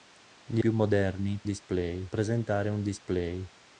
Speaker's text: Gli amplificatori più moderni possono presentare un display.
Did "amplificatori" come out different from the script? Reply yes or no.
yes